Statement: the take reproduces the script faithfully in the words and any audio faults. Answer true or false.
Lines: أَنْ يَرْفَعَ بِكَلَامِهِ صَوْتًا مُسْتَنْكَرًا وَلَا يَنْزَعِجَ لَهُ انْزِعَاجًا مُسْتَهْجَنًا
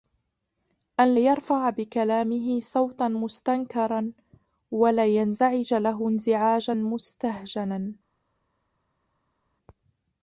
true